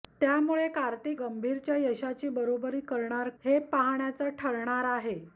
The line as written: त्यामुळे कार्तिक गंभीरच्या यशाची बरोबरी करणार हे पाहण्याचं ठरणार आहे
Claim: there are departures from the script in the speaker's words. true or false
false